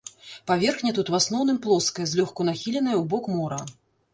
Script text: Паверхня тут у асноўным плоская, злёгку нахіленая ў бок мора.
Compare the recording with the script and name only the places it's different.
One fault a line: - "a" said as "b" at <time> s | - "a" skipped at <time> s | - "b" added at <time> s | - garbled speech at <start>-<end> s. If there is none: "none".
none